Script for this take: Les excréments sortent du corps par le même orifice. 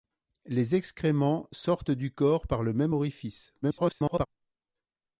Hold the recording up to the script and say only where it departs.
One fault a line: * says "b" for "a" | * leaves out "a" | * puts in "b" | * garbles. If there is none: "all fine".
* garbles